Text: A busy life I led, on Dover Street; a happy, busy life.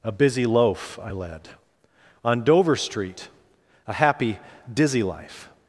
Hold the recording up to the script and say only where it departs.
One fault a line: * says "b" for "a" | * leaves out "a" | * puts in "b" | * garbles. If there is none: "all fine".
* says "loaf" for "life"
* says "dizzy" for "busy"